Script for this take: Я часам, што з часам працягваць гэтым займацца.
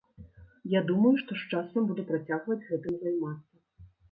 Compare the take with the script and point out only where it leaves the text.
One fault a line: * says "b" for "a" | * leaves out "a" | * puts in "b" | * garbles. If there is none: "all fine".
* says "думаю" for "часам"
* puts in "буду"